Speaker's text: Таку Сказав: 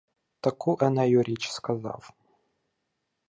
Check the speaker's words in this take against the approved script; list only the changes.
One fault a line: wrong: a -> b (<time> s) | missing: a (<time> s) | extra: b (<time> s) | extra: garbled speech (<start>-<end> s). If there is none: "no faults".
extra: Енею річ (0.8 s)